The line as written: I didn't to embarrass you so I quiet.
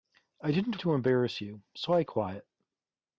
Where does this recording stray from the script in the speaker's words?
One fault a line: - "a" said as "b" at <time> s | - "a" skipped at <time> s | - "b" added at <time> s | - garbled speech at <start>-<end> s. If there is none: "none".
none